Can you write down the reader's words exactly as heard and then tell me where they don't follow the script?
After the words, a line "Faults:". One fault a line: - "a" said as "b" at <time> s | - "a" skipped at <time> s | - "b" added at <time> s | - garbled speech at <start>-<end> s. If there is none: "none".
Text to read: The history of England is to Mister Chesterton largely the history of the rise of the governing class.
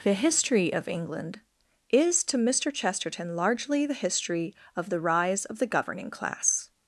The history of England is to Mister Chesterton largely the history of the rise of the governing class.
Faults:
none